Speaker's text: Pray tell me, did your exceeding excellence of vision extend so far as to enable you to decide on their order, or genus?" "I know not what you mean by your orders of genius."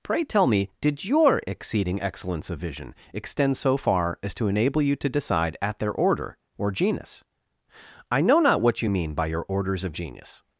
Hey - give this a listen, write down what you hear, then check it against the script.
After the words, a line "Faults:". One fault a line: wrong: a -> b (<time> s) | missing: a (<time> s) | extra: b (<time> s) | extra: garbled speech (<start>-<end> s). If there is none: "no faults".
Pray tell me, did your exceeding excellence of vision extend so far as to enable you to decide at their order, or genus?" "I know not what you mean by your orders of genius."
Faults:
wrong: on -> at (5.6 s)